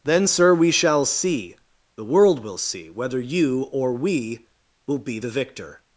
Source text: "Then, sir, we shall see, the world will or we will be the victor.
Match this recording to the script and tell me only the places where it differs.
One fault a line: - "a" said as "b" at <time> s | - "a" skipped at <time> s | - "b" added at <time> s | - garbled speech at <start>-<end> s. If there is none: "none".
- "see whether you" added at 2.6 s